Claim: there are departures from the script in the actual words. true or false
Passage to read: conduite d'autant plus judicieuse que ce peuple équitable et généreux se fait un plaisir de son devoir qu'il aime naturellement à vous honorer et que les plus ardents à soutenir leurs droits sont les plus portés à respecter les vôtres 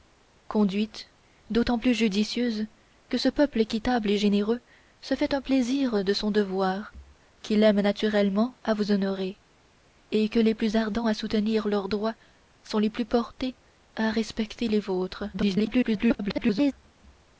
true